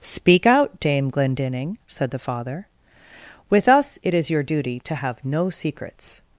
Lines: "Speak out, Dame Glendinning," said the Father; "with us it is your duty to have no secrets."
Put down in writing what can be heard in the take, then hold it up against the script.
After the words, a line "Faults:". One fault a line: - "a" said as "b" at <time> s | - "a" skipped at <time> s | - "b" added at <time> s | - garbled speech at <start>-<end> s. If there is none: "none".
"Speak out, Dame Glendinning," said the Father; "with us it is your duty to have no secrets."
Faults:
none